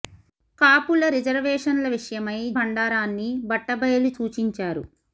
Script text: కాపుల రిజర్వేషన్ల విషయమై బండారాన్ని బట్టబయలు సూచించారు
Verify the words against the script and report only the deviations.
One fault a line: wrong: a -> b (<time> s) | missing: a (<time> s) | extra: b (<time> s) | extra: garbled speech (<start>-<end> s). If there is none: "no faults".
no faults